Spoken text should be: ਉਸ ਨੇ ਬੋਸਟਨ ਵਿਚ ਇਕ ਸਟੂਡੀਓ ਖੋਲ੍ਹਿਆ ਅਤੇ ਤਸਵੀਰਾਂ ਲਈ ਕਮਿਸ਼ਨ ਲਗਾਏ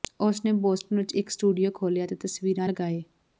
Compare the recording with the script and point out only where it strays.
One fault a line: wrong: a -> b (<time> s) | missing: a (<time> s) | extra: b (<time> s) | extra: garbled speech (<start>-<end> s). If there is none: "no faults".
missing: ਲਈ ਕਮਿਸ਼ਨ (2.7 s)